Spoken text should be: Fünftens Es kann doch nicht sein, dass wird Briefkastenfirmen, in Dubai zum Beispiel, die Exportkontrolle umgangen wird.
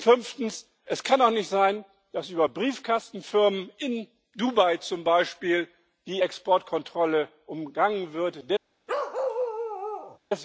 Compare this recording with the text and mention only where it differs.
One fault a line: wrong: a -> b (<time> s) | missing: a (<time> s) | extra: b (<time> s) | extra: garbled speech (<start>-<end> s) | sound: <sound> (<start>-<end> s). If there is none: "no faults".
wrong: wird -> über (2.3 s)
sound: bark (8.9-10.2 s)